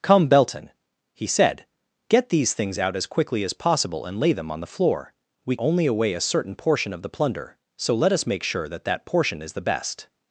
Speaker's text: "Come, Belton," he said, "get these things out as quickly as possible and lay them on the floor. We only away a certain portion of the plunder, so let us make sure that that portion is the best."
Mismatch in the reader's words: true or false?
false